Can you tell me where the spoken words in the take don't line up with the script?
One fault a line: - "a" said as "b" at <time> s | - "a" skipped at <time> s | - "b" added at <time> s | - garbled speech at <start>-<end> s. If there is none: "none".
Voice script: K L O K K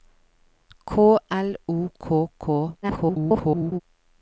- garbled speech at 2.8-3.8 s